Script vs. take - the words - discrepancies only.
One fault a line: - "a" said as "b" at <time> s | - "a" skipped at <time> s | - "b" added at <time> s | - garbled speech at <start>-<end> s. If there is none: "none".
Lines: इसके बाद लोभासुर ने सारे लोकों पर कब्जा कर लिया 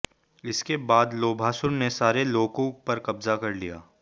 none